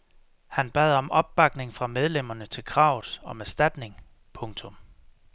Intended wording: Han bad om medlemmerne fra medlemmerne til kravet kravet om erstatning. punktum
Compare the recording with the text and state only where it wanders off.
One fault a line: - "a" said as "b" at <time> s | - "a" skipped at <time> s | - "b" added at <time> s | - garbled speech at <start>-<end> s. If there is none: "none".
- "medlemmerne" said as "opbakning" at 1.1 s
- "kravet" skipped at 3.2 s